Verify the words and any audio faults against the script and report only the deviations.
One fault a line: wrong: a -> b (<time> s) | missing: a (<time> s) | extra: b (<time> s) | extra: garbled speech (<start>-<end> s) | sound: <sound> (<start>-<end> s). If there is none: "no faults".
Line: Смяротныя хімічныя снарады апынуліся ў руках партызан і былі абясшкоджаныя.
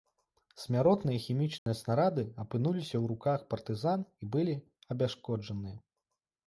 sound: dropout (1.6-1.7 s)